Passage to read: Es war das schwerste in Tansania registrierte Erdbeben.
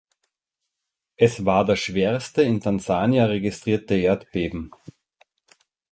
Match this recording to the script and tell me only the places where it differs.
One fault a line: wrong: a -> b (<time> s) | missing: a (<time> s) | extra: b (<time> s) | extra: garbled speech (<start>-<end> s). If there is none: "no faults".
no faults